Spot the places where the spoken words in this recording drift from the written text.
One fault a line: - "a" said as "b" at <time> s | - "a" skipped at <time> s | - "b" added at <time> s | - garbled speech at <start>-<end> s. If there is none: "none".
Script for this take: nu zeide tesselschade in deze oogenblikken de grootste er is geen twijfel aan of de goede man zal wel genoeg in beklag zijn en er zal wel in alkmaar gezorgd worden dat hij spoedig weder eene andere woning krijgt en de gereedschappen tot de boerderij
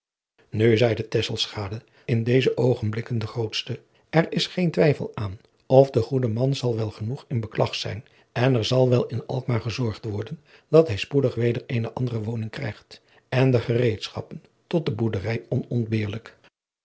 none